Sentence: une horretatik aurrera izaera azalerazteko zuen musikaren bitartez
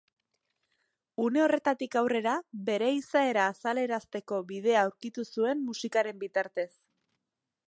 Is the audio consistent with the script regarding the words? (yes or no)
no